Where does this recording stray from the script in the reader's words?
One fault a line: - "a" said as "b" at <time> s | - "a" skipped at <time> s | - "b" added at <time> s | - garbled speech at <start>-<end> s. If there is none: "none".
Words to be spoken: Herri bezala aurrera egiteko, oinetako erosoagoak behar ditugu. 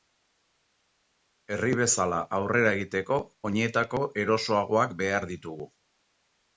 none